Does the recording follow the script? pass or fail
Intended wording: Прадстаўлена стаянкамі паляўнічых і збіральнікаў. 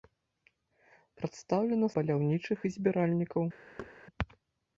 fail